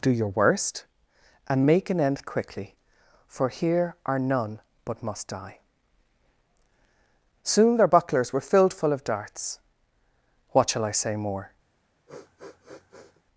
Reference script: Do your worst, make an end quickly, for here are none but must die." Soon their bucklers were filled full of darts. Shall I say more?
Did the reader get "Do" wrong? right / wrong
right